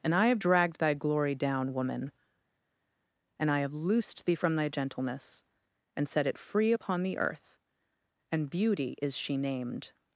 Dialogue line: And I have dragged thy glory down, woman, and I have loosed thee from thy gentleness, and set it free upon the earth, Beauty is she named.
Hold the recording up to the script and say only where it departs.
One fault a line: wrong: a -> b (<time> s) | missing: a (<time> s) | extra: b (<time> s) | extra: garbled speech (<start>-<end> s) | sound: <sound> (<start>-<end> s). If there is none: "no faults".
extra: and (8.3 s)